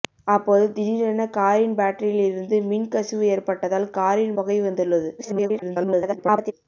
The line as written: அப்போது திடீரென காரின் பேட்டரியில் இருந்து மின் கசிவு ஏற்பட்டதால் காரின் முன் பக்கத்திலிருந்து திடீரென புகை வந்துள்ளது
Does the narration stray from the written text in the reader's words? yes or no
yes